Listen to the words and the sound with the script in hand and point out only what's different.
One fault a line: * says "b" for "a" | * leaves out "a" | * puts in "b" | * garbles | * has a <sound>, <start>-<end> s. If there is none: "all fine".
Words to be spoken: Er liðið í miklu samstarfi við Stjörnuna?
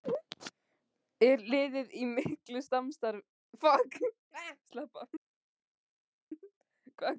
all fine